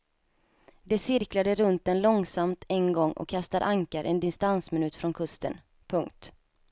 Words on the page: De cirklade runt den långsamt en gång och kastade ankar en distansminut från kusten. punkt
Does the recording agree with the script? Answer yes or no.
yes